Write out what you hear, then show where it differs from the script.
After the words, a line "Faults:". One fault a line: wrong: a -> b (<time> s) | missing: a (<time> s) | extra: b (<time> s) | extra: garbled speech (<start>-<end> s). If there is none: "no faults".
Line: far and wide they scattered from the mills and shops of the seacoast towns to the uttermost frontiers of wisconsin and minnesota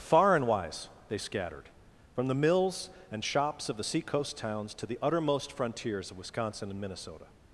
far and wise they scattered from the mills and shops of the seacoast towns to the uttermost frontiers of wisconsin and minnesota
Faults:
wrong: wide -> wise (0.5 s)